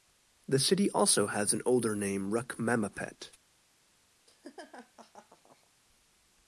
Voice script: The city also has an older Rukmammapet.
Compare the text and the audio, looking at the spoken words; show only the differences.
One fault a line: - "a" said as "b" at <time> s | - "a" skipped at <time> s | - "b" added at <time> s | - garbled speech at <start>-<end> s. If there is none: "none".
- "name" added at 1.9 s